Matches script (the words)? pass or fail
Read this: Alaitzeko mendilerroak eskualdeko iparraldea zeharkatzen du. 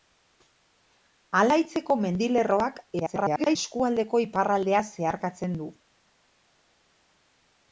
fail